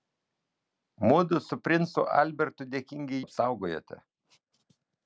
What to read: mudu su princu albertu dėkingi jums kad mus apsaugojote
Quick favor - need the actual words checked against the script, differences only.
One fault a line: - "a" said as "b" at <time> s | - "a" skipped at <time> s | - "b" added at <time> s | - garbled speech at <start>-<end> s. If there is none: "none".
- "jums kad mus" skipped at 3.2 s